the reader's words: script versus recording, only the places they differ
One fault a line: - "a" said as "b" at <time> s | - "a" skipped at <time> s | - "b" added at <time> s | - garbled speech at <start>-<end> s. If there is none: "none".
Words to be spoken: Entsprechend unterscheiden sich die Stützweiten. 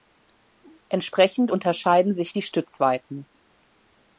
none